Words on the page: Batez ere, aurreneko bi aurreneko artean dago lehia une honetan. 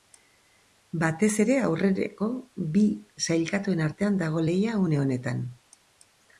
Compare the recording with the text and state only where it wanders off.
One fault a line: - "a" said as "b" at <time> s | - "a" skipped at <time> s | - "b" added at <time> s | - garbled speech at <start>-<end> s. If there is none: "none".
- "aurreneko" said as "sailkatuen" at 3.3 s